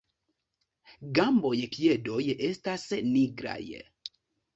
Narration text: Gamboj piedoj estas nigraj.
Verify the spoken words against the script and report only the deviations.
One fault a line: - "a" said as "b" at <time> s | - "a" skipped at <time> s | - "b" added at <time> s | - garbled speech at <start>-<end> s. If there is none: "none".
none